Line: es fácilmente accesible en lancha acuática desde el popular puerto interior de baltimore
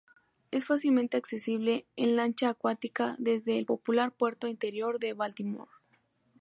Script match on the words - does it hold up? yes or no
yes